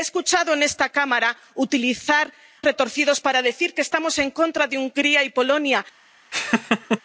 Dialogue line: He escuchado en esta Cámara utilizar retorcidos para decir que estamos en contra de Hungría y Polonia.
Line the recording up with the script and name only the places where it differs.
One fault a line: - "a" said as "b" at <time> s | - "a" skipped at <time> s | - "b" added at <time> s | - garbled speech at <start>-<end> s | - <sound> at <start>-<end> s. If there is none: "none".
- laugh at 6.3-7.0 s